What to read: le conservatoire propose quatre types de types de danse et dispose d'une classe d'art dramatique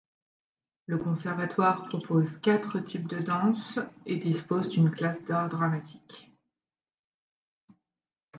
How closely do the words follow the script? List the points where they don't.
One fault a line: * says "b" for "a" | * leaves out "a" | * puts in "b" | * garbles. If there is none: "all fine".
* leaves out "types de"